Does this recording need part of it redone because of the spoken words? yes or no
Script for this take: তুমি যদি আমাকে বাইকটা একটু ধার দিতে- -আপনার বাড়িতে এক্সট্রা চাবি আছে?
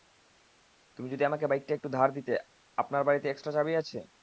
no